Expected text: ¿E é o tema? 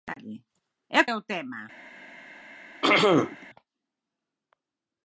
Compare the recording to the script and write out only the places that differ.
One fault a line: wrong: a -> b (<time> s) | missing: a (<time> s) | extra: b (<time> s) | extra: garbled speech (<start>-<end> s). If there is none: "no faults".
no faults